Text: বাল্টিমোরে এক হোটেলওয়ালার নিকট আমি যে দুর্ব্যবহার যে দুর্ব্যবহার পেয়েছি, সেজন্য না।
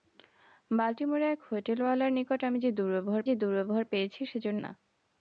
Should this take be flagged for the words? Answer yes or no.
no